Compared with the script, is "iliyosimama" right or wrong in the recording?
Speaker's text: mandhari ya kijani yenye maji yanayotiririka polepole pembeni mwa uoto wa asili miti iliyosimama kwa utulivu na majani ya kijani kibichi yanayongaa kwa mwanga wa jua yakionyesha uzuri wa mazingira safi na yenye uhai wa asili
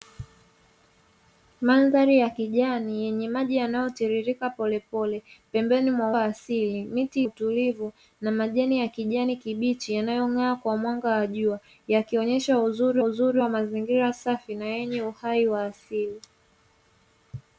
wrong